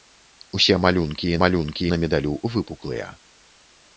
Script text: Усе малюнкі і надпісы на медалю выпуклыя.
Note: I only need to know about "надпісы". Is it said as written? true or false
false